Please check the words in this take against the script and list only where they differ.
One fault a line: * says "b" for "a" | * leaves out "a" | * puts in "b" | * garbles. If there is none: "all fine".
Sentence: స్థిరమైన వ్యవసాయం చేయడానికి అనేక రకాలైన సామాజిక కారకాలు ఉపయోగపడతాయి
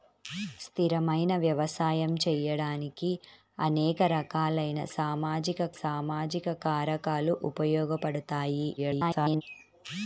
* puts in "సామాజిక"
* garbles